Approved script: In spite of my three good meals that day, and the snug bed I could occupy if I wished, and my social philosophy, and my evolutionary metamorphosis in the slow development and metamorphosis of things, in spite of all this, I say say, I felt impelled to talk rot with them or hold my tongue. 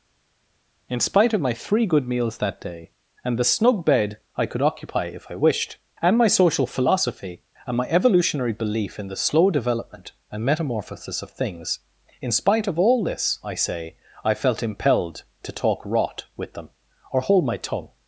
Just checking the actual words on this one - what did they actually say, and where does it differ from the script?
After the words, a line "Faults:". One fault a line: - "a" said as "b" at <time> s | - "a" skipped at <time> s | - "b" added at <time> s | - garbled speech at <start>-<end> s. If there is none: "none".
In spite of my three good meals that day, and the snug bed I could occupy if I wished, and my social philosophy, and my evolutionary belief in the slow development and metamorphosis of things, in spite of all this, I say, I felt impelled to talk rot with them or hold my tongue.
Faults:
- "metamorphosis" said as "belief" at 8.5 s
- "say" skipped at 14.0 s